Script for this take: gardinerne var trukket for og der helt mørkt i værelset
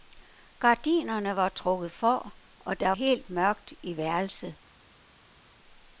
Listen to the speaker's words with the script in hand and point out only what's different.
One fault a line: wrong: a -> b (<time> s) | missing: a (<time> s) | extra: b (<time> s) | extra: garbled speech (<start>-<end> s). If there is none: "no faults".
no faults